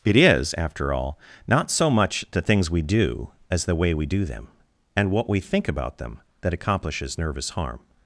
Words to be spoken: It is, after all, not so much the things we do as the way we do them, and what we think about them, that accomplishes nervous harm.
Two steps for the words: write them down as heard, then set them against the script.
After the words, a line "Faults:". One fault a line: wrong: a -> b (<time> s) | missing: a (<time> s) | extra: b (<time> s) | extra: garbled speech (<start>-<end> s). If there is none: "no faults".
It is, after all, not so much the things we do as the way we do them, and what we think about them, that accomplishes nervous harm.
Faults:
no faults